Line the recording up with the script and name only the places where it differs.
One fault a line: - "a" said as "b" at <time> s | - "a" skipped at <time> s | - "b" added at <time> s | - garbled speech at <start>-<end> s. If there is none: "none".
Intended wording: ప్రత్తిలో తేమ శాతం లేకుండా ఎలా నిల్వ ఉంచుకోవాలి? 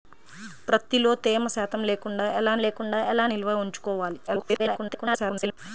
- "లేకుండా ఎలా" added at 2.6 s
- garbled speech at 4.3-5.6 s